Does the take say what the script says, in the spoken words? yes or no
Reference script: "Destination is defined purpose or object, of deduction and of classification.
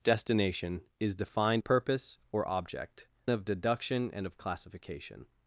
yes